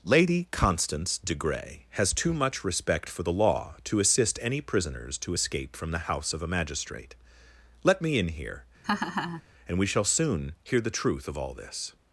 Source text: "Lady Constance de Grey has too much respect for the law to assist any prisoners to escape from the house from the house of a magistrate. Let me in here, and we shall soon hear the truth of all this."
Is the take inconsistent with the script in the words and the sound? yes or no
yes